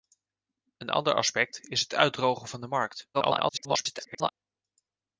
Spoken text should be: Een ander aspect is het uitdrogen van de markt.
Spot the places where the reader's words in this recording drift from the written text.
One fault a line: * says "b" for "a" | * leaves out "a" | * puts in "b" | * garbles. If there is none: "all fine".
* garbles